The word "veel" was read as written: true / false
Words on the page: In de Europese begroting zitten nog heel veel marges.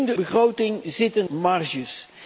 false